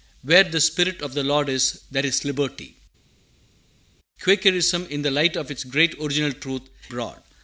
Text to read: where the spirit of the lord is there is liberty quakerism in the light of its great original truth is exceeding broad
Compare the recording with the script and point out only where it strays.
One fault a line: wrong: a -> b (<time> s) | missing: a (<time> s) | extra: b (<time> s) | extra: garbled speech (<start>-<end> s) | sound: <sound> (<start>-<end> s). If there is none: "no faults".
missing: is exceeding (6.6 s)